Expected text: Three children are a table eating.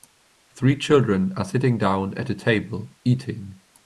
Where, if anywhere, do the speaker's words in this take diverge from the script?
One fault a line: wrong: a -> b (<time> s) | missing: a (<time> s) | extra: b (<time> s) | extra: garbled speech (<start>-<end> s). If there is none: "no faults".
extra: sitting down at (1.4 s)